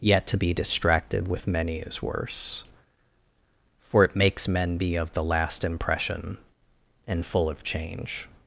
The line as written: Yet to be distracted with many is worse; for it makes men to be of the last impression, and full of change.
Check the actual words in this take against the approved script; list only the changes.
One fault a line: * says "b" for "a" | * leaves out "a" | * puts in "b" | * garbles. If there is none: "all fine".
* leaves out "to"